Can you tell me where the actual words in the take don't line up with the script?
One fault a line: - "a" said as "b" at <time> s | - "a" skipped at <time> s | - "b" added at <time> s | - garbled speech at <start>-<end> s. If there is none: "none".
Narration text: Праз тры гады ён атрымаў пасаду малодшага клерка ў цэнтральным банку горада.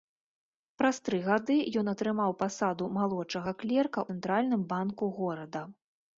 - "ў" skipped at 4.0 s